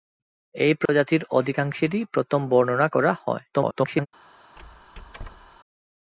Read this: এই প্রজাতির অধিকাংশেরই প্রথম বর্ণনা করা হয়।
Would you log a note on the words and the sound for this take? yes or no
yes